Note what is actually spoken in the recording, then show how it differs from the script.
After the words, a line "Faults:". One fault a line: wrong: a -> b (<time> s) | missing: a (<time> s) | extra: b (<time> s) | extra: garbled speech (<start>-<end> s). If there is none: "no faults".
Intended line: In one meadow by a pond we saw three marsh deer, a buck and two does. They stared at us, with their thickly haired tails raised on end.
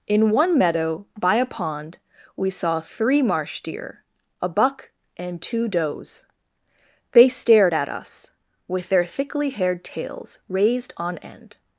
In one meadow by a pond we saw three marsh deer, a buck and two does. They stared at us, with their thickly haired tails raised on end.
Faults:
no faults